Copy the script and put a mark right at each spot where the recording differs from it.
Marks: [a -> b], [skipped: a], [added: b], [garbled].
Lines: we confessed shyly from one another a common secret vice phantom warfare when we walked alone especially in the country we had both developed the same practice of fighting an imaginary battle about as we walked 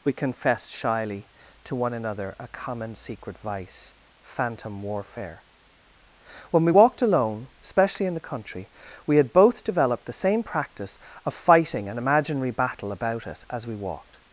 we confessed shyly [from -> to] one another a common secret vice phantom warfare when we walked alone especially in the country we had both developed the same practice of fighting an imaginary battle about [added: us] as we walked